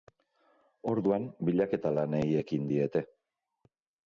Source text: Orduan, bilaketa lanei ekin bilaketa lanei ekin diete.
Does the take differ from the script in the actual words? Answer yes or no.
yes